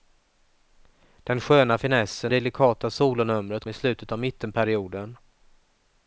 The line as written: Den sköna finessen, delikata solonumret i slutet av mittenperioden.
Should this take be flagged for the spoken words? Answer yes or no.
no